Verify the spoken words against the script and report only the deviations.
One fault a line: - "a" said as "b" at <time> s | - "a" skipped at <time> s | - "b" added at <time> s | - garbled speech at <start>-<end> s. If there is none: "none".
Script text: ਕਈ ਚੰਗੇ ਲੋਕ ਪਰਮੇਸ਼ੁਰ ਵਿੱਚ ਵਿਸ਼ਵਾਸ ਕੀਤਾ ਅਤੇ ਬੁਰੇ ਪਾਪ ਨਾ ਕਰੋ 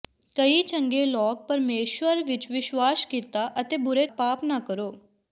none